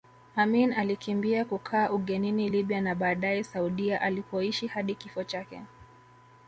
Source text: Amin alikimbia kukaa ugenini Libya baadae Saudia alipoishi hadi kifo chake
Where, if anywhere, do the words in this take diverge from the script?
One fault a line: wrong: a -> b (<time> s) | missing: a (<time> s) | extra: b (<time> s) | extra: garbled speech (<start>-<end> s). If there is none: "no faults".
extra: na (2.8 s)